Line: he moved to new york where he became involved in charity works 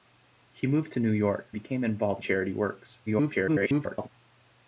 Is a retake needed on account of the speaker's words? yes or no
yes